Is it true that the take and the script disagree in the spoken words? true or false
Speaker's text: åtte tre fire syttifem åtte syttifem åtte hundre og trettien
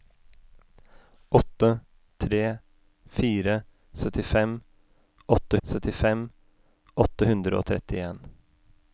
false